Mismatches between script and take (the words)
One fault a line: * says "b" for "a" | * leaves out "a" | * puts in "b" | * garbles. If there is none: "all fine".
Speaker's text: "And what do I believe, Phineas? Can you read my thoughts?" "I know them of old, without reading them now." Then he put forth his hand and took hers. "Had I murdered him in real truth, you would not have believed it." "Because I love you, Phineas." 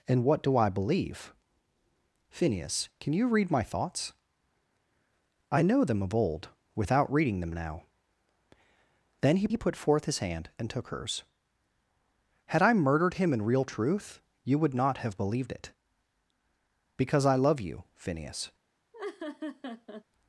* puts in "he"